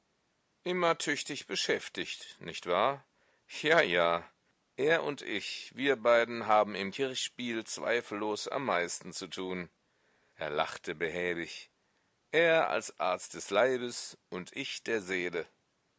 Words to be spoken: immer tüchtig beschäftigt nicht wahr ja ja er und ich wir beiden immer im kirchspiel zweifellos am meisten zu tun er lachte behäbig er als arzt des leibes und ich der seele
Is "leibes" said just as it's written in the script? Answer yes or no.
yes